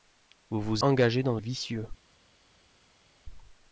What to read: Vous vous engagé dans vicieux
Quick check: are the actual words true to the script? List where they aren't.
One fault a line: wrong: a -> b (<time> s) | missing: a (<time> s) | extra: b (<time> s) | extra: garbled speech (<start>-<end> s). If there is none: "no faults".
no faults